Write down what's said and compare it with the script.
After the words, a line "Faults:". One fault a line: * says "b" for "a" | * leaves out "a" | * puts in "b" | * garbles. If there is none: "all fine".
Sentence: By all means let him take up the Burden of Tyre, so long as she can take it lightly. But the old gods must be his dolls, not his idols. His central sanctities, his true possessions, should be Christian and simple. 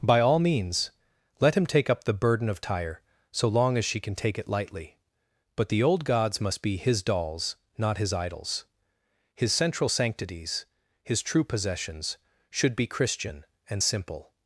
By all means let him take up the Burden of Tyre, so long as she can take it lightly. But the old gods must be his dolls, not his idols. His central sanctities, his true possessions, should be Christian and simple.
Faults:
all fine